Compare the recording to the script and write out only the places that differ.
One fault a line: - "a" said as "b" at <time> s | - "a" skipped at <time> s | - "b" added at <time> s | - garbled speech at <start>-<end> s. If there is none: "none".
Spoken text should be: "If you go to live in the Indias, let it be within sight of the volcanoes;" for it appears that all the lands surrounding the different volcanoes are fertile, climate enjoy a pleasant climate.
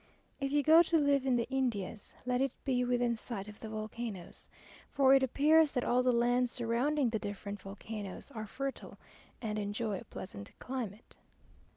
- "climate" said as "and" at 9.4 s